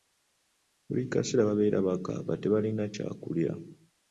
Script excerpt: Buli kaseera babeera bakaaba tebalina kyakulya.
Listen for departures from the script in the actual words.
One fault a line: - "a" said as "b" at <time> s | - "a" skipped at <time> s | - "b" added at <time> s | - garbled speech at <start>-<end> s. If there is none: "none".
none